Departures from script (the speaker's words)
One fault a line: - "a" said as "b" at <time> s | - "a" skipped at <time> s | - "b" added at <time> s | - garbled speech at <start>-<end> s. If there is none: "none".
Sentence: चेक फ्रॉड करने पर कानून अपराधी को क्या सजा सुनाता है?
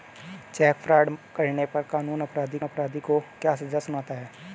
- "अपराधी" added at 2.6 s